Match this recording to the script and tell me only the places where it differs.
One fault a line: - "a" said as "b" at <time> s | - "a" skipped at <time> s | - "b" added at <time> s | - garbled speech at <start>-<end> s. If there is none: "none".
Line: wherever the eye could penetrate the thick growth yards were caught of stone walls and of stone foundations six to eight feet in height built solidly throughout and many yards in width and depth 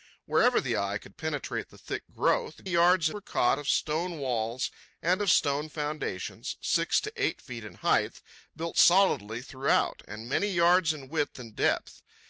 none